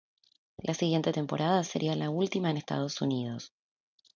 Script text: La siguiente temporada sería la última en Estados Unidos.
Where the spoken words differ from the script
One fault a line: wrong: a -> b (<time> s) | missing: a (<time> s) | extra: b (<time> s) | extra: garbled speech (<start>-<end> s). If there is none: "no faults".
no faults